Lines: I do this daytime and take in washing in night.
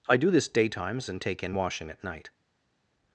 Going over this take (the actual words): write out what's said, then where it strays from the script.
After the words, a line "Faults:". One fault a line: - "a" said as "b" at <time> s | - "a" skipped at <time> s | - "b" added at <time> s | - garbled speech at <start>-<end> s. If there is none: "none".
I do this daytimes and take in washing at night.
Faults:
- "daytime" said as "daytimes" at 0.5 s
- "in" said as "at" at 1.9 s